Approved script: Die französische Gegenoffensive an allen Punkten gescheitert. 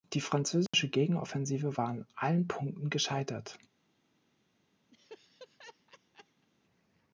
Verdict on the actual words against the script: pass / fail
fail